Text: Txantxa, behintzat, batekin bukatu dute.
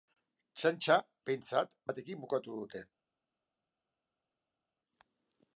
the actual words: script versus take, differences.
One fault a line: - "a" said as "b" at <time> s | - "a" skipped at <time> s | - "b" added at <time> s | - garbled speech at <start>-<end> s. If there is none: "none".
none